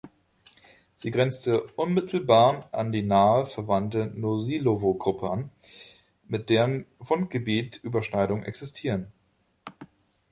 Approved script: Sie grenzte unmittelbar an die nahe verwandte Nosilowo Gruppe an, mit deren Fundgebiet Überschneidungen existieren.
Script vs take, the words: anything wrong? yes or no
no